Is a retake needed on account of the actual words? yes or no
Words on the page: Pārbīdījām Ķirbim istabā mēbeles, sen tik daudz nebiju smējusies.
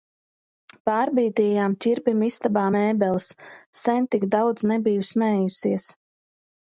no